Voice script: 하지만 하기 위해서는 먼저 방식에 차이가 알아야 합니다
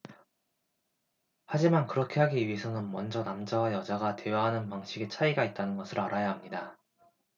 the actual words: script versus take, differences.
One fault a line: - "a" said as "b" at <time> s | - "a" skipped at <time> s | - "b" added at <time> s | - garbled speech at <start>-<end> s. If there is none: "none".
- "그렇게" added at 1.9 s
- "남자와 여자가 대화하는" added at 3.2 s
- "있다는 것을" added at 5.4 s